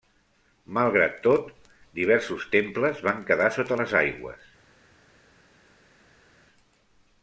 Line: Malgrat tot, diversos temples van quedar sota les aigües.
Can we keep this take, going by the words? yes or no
yes